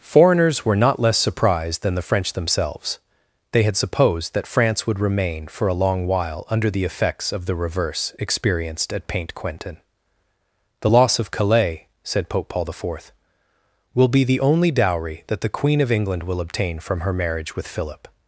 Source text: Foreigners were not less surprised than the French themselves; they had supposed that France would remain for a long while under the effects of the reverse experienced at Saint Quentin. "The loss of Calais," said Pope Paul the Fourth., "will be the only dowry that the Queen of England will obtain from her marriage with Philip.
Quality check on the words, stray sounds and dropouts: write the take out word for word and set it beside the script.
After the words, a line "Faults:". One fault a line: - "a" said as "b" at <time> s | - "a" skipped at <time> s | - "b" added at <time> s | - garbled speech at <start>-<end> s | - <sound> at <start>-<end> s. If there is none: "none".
Foreigners were not less surprised than the French themselves; they had supposed that France would remain for a long while under the effects of the reverse experienced at Paint Quentin. "The loss of Calais," said Pope Paul the Fourth., "will be the only dowry that the Queen of England will obtain from her marriage with Philip.
Faults:
- "Saint" said as "Paint" at 9.1 s